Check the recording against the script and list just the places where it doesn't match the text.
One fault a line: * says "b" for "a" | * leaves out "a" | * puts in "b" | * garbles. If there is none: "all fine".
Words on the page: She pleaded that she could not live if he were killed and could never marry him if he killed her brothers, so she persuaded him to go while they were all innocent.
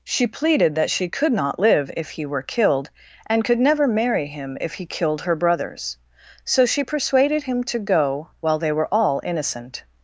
all fine